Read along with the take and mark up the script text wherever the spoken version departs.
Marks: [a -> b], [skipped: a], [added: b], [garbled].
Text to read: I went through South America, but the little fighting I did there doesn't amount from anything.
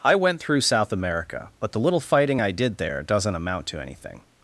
I went through South America, but the little fighting I did there doesn't amount [from -> to] anything.